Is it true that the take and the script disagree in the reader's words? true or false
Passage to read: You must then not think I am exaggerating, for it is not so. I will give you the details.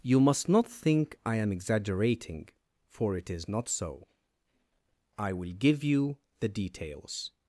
true